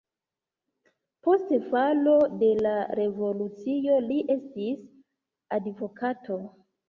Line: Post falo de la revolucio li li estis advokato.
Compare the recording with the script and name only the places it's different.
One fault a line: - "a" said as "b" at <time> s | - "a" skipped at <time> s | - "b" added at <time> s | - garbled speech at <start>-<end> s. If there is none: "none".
- "li" skipped at 4.2 s